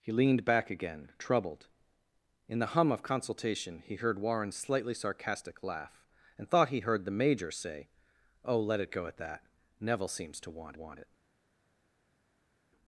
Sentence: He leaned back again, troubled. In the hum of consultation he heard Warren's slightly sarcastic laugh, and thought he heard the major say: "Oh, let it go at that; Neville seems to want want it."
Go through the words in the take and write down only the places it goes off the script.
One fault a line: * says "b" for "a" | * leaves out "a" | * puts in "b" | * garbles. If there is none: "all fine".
all fine